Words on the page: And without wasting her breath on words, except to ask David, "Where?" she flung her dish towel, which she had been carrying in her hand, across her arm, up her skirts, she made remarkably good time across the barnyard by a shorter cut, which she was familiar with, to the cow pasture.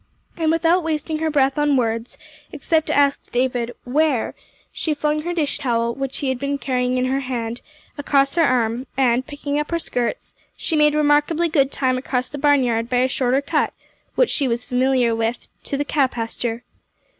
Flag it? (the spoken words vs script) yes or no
yes